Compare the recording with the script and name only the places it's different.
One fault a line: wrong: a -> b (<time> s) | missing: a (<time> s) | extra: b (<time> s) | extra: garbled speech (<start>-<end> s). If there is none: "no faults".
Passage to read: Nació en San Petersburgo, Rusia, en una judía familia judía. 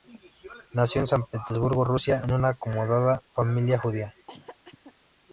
wrong: judía -> acomodada (2.5 s)